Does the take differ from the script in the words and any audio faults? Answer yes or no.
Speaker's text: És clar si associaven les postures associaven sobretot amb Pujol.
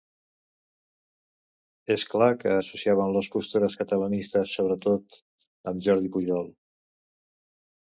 yes